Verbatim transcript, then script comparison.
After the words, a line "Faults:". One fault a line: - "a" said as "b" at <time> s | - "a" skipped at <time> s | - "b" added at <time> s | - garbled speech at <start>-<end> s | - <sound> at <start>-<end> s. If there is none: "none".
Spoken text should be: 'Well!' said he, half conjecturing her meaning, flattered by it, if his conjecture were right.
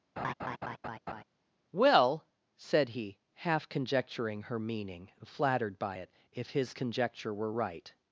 'Well!' said he, half conjecturing her meaning, flattered by it, if his conjecture were right.
Faults:
- laugh at 0.2-1.2 s